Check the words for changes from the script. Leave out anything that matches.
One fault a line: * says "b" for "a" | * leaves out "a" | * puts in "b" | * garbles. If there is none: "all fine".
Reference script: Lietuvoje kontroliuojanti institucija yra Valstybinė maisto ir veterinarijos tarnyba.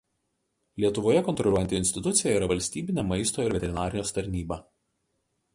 all fine